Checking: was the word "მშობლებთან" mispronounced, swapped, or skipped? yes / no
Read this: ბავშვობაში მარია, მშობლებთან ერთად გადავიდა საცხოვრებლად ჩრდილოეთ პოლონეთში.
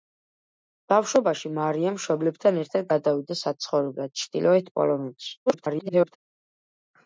no